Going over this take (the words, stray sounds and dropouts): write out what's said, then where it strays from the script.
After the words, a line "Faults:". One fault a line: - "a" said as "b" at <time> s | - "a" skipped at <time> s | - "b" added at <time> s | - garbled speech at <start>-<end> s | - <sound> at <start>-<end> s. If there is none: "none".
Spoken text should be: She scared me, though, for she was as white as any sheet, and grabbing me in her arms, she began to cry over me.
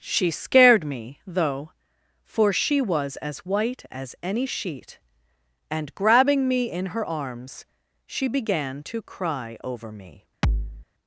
She scared me, though, for she was as white as any sheet, and grabbing me in her arms, she began to cry over me.
Faults:
- thud at 10.4-10.9 s